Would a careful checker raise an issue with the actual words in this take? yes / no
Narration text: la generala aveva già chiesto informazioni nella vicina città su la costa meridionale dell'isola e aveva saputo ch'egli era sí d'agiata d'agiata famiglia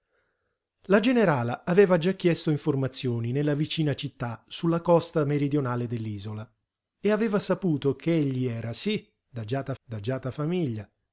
no